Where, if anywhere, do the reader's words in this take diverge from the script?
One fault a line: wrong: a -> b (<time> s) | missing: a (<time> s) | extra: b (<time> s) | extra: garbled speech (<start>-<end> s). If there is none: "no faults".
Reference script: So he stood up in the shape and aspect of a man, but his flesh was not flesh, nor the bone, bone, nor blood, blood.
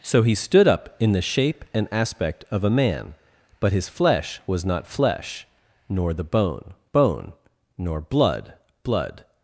no faults